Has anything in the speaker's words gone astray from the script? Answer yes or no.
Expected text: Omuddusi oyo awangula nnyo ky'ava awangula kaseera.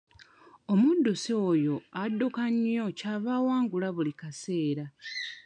yes